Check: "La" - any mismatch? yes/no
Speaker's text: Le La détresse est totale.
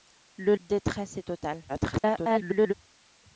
yes